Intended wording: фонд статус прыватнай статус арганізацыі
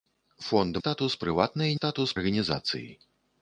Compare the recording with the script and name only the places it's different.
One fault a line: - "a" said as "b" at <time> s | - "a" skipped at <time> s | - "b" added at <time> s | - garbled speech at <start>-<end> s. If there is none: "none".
none